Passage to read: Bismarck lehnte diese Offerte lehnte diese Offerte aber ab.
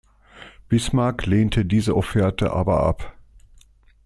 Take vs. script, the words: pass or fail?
fail